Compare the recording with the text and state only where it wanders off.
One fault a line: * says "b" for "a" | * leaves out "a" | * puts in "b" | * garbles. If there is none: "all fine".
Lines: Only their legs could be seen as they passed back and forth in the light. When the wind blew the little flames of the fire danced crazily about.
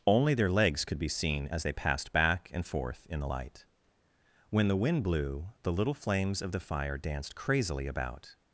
all fine